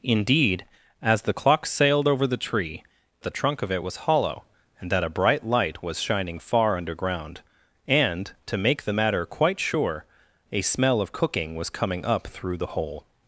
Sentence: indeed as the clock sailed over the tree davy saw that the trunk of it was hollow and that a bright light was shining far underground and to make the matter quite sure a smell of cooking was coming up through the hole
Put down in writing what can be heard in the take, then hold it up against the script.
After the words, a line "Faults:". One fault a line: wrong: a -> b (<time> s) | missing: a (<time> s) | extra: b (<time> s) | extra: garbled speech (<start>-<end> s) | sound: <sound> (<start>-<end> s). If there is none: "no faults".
indeed as the clock sailed over the tree the trunk of it was hollow and that a bright light was shining far underground and to make the matter quite sure a smell of cooking was coming up through the hole
Faults:
missing: davy saw that (2.8 s)